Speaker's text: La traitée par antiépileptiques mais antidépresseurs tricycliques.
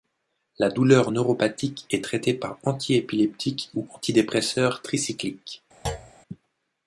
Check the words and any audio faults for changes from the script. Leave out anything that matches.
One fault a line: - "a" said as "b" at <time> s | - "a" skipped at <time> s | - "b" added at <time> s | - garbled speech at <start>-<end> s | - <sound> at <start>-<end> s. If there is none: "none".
- "douleur neuropathique est" added at 0.7 s
- "mais" said as "ou" at 3.7 s
- thud at 5.8-6.1 s